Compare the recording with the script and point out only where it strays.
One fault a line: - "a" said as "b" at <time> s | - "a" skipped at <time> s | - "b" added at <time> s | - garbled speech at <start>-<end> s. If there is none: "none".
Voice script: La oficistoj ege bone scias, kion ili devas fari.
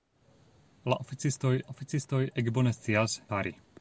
- "oficistoj" added at 1.7 s
- "kion ili devas" skipped at 3.2 s